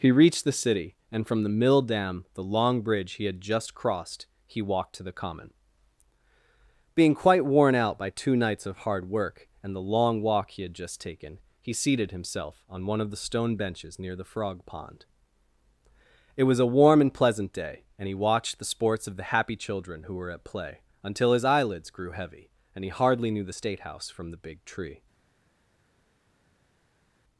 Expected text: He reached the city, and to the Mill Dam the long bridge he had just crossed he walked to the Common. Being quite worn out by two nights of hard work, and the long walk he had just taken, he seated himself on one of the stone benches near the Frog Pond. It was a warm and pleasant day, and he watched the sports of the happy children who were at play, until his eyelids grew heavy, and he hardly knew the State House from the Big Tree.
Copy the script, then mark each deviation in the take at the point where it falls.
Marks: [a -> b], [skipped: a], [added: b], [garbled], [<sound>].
He reached the city, and [to -> from] the Mill Dam the long bridge he had just crossed he walked to the Common. Being quite worn out by two nights of hard work, and the long walk he had just taken, he seated himself on one of the stone benches near the Frog Pond. It was a warm and pleasant day, and he watched the sports of the happy children who were at play, until his eyelids grew heavy, and he hardly knew the State House from the Big Tree.